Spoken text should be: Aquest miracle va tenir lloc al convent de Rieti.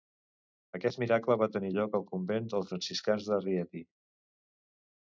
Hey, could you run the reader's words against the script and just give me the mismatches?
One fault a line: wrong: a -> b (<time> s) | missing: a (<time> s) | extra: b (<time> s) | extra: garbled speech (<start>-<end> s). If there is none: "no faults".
extra: dels franciscans (2.6 s)